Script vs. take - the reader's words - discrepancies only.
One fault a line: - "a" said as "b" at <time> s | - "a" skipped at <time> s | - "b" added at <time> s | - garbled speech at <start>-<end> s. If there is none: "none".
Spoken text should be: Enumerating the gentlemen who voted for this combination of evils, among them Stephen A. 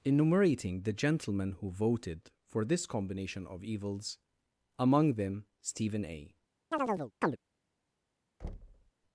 none